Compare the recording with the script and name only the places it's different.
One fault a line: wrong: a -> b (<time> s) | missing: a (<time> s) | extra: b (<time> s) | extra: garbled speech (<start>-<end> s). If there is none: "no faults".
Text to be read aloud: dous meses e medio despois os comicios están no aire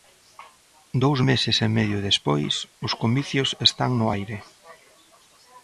no faults